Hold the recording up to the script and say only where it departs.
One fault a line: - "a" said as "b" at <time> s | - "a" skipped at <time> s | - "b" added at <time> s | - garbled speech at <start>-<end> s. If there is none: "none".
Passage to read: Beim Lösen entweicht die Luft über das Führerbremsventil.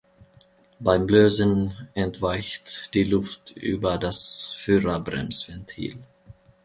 none